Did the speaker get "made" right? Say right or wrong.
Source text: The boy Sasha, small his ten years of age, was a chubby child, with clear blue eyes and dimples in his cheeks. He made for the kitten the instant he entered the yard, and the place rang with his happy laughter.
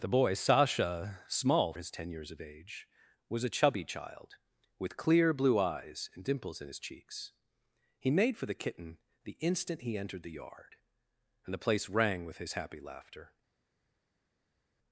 right